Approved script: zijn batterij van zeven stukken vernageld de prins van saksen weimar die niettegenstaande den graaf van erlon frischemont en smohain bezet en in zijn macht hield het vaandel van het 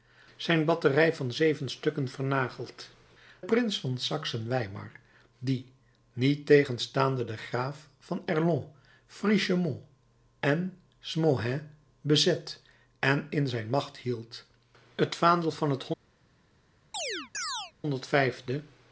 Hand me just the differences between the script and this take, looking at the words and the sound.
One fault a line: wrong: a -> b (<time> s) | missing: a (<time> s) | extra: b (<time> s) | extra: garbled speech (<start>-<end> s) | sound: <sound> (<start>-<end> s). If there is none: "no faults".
missing: de (2.9 s)
sound: chirp (16.9-17.7 s)